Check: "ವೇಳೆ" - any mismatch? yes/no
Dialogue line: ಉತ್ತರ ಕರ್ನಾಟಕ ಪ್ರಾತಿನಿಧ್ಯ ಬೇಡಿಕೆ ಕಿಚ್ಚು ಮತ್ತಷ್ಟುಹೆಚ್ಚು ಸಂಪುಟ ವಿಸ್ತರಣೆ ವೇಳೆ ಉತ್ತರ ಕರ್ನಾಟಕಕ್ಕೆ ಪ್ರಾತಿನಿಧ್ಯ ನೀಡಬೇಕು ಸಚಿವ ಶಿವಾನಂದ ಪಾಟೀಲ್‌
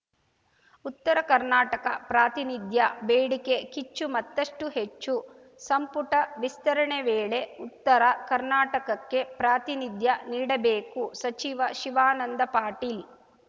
no